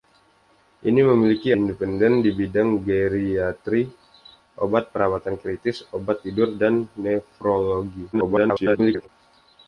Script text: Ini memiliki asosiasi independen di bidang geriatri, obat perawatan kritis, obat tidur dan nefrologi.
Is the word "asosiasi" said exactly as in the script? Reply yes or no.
no